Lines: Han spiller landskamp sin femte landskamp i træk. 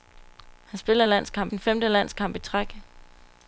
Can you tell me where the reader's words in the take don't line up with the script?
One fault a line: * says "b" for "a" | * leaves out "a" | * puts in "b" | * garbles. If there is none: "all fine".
all fine